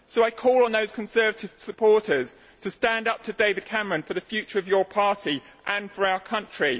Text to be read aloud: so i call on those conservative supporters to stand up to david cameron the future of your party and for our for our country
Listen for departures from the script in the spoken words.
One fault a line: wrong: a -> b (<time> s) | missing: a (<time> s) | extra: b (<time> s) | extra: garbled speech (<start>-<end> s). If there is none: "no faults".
extra: for (4.0 s)
missing: for our (6.2 s)